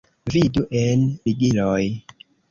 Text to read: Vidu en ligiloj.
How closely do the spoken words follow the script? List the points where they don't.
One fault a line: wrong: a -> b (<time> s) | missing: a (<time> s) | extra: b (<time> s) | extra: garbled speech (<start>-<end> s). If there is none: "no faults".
no faults